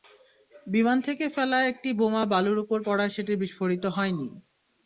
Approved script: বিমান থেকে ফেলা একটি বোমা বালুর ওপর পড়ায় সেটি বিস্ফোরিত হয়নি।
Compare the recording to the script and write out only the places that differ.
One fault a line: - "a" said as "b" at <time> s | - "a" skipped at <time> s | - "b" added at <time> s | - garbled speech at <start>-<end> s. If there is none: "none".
none